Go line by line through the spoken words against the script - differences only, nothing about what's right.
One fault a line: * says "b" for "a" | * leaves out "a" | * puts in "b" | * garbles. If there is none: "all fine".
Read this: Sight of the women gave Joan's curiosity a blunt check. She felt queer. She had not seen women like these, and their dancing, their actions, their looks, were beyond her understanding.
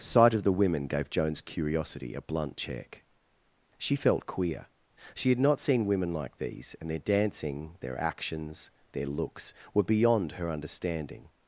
all fine